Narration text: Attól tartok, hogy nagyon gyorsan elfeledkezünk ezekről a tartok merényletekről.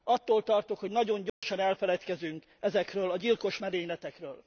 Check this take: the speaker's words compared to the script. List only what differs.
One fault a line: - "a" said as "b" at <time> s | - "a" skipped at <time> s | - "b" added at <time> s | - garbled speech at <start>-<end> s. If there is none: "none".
- "tartok" said as "gyilkos" at 3.2 s